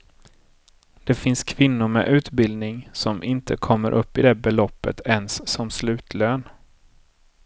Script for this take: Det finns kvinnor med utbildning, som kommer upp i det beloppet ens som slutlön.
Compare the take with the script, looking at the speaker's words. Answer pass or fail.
fail